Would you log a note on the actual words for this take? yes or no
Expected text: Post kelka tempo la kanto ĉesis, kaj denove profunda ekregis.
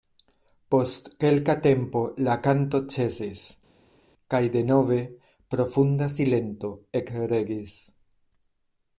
yes